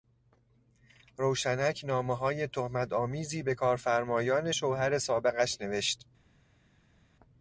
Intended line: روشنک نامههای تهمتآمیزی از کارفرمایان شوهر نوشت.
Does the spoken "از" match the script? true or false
false